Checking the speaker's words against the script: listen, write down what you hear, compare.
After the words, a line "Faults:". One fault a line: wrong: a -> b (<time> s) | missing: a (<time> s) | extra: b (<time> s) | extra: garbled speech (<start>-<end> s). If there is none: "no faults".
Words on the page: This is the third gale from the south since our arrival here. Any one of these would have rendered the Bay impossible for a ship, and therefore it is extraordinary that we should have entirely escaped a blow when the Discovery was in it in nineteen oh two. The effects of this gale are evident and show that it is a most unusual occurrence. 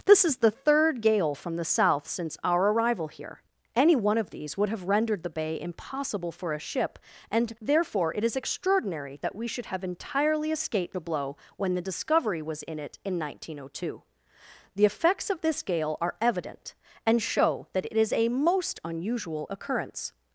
This is the third gale from the south since our arrival here. Any one of these would have rendered the Bay impossible for a ship, and therefore it is extraordinary that we should have entirely escaped a blow when the Discovery was in it in nineteen oh two. The effects of this gale are evident and show that it is a most unusual occurrence.
Faults:
no faults